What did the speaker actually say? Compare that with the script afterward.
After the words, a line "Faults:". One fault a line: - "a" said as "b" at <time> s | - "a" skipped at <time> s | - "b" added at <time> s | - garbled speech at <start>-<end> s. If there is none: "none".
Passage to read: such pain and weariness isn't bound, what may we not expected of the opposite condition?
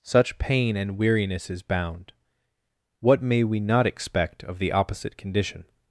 such pain and weariness is bound, what may we not expect of the opposite condition?
Faults:
- "isn't" said as "is" at 1.5 s
- "expected" said as "expect" at 3.9 s